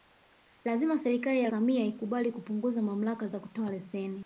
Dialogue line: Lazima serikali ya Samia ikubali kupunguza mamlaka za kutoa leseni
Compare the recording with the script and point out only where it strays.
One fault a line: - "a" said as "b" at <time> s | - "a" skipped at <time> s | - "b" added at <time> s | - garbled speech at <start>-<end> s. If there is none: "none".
none